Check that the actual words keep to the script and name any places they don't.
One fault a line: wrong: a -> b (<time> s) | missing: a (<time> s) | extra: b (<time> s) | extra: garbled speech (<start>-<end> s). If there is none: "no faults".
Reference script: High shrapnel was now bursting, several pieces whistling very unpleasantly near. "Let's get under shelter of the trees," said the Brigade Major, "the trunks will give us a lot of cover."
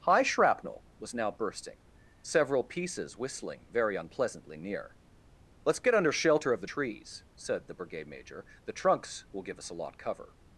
missing: of (10.0 s)